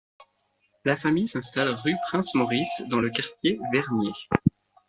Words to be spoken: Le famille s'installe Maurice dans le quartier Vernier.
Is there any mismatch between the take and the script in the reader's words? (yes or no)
yes